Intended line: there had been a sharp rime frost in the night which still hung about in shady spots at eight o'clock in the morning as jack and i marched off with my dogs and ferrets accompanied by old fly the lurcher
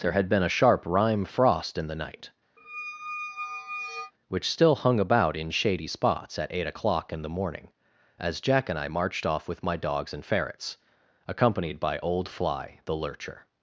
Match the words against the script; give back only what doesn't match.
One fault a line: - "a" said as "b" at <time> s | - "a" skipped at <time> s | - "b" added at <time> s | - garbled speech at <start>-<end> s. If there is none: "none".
none